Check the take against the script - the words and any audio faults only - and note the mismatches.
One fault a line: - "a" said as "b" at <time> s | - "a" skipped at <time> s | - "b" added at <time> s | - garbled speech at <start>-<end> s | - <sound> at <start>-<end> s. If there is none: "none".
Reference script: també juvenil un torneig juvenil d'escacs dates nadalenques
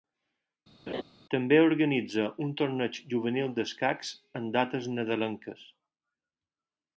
- laugh at 0.9-1.0 s
- "juvenil" said as "organitza" at 1.7 s
- "en" added at 4.4 s